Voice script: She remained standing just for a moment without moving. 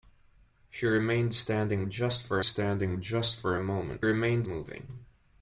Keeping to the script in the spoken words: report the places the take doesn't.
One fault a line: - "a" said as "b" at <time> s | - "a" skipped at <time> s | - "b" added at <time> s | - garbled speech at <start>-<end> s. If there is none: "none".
- "standing just for" added at 2.4 s
- "without" said as "remained" at 4.0 s